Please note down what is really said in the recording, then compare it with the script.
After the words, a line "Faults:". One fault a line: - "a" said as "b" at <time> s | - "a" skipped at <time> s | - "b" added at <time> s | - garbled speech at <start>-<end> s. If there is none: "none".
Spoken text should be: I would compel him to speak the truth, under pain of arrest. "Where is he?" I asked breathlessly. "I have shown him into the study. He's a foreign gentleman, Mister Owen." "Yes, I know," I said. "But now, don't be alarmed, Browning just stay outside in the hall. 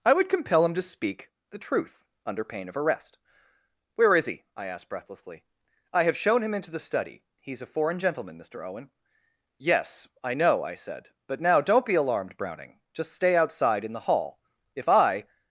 I would compel him to speak the truth, under pain of arrest. "Where is he?" I asked breathlessly. "I have shown him into the study. He's a foreign gentleman, Mister Owen." "Yes, I know," I said. "But now, don't be alarmed, Browning just stay outside in the hall. If I
Faults:
- "If I" added at 14.8 s